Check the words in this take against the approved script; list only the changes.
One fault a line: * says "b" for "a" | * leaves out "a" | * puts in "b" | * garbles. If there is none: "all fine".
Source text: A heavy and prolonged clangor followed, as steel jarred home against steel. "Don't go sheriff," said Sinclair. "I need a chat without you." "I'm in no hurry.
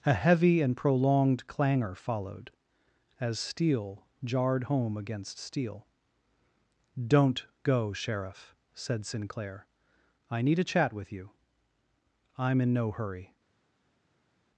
* says "with" for "without"